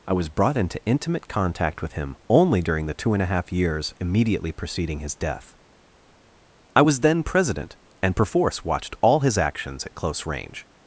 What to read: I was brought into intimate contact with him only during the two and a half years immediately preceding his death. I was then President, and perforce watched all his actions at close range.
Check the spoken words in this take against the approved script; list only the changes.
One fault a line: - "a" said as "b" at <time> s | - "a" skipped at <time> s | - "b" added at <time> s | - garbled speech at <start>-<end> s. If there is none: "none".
none